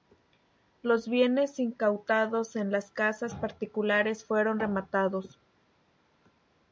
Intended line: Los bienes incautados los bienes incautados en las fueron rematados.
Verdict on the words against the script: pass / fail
fail